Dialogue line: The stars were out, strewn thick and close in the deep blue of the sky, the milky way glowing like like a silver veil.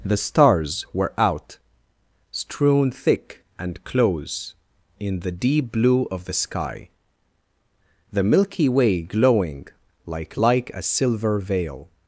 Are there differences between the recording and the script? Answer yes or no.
no